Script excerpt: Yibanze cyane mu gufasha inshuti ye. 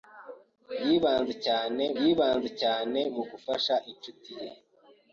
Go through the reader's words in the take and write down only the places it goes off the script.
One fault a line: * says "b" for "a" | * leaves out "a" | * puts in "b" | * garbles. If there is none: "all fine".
* puts in "yibanze cyane"